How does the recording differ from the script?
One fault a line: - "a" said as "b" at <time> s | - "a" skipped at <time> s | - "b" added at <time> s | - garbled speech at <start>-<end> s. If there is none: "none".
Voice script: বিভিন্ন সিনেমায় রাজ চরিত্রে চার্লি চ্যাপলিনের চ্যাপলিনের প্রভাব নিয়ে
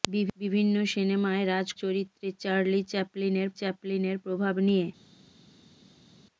none